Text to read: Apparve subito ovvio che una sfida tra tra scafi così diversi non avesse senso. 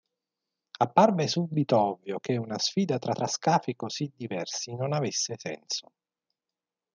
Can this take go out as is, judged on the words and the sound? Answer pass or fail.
pass